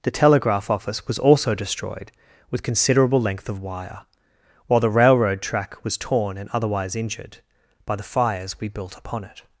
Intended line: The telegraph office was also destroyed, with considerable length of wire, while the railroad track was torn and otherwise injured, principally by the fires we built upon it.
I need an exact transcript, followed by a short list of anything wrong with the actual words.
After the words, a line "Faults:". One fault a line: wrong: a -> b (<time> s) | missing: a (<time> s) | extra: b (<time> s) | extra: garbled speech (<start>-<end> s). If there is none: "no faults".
The telegraph office was also destroyed, with considerable length of wire, while the railroad track was torn and otherwise injured, by the fires we built upon it.
Faults:
missing: principally (7.4 s)